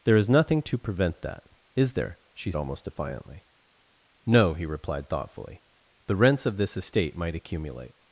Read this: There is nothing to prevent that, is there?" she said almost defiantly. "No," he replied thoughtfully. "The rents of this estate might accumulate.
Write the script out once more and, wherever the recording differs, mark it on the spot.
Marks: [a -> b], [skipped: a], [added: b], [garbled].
There is nothing to prevent that, is there?" she [skipped: said] almost defiantly. "No," he replied thoughtfully. "The rents of this estate might accumulate.